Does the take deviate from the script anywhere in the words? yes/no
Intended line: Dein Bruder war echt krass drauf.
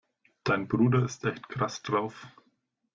yes